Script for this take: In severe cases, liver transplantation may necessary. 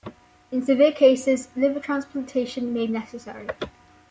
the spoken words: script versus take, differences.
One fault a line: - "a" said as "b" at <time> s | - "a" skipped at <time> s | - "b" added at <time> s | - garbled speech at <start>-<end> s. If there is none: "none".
none